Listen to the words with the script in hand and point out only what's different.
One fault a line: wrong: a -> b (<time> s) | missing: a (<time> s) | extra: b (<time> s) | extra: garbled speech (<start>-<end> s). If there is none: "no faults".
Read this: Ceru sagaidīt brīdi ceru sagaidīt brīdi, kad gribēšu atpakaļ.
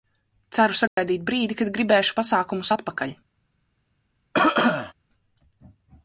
missing: ceru sagaidīt brīdi (1.6 s)
extra: pasākumus (2.2 s)